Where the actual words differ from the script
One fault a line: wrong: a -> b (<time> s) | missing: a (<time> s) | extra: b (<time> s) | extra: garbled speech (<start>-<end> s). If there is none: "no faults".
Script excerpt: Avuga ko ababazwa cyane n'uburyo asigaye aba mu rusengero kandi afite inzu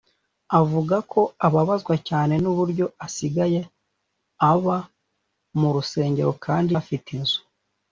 no faults